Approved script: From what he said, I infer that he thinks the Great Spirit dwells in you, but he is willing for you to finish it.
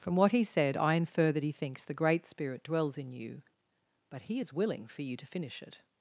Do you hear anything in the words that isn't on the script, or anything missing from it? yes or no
no